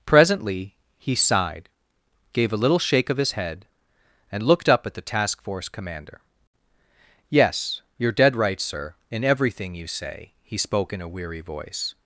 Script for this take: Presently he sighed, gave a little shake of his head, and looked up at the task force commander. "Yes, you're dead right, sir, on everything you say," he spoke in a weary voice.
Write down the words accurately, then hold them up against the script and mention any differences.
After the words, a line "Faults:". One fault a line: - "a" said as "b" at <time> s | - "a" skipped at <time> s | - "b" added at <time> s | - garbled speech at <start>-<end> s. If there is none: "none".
Presently he sighed, gave a little shake of his head, and looked up at the task force commander. "Yes, you're dead right, sir, in everything you say," he spoke in a weary voice.
Faults:
- "on" said as "in" at 9.1 s